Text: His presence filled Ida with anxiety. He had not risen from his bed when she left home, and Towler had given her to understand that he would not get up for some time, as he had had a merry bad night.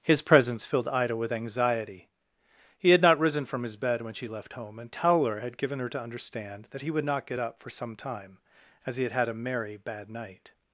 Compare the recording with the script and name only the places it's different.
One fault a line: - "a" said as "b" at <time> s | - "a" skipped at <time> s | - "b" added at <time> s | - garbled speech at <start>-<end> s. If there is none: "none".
none